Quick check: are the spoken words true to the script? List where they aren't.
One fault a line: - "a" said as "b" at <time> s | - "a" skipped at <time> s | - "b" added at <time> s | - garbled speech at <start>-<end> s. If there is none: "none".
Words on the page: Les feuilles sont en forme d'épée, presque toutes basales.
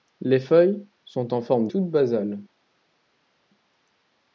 - "d'épée presque" skipped at 1.7 s